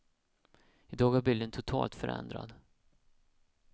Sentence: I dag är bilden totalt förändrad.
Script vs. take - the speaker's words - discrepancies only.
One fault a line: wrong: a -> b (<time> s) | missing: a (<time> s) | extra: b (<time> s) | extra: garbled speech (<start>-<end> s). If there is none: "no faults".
no faults